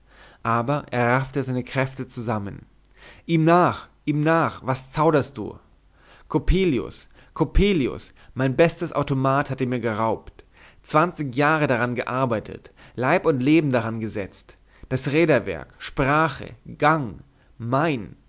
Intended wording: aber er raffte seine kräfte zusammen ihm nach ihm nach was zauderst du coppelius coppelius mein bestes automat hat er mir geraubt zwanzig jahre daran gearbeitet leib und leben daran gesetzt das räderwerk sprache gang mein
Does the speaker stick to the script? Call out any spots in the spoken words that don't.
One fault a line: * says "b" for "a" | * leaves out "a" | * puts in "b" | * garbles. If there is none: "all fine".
all fine